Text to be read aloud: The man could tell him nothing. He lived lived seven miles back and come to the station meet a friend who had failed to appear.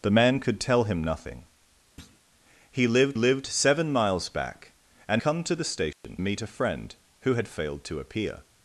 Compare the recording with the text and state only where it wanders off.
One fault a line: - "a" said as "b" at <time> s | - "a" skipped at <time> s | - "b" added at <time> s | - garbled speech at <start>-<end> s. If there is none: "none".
none